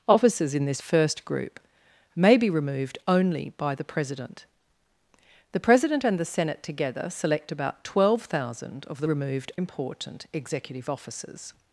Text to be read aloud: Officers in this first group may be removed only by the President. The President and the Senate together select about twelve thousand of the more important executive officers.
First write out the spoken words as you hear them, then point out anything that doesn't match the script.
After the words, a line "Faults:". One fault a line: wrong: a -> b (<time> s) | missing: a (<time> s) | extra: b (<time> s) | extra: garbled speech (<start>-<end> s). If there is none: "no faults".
Officers in this first group may be removed only by the President. The President and the Senate together select about twelve thousand of the removed important executive officers.
Faults:
wrong: more -> removed (9.0 s)